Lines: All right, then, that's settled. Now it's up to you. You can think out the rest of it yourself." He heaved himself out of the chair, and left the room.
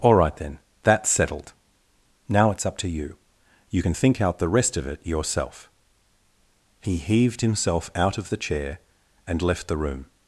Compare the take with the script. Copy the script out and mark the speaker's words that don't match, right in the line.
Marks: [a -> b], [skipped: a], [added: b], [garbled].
All right, then, that's settled. Now it's up to you. You can think out the rest of it yourself." He heaved himself out of the chair, and left the room.